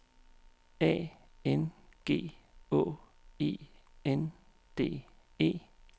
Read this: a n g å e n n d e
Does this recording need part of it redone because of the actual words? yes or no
yes